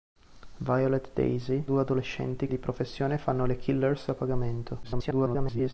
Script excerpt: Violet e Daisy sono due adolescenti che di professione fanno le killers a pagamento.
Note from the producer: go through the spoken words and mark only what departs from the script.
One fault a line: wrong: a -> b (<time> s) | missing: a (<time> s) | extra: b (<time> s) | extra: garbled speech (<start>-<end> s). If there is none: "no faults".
missing: sono (1.6 s)
missing: che (2.5 s)
extra: garbled speech (4.8-5.7 s)